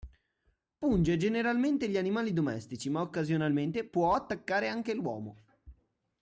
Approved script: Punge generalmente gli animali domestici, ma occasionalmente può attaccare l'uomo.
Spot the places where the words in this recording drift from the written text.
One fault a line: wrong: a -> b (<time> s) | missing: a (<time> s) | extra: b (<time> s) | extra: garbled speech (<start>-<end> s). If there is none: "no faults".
extra: anche (4.7 s)